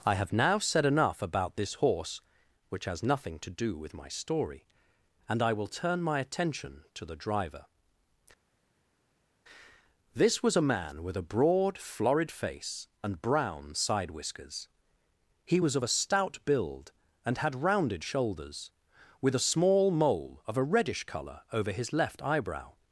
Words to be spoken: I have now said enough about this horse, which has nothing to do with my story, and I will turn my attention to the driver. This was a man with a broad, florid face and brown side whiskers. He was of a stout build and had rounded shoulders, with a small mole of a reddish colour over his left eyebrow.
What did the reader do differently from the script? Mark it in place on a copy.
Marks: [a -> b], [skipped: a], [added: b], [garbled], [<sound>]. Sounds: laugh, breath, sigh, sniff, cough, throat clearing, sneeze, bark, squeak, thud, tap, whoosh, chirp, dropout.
I have now said enough about this horse, which has nothing to do with my story, and I will turn my attention to the driver. This was a man with a broad, florid face and brown side whiskers. He was of a stout build and had rounded shoulders, with a small mole of a reddish colour over his left eyebrow.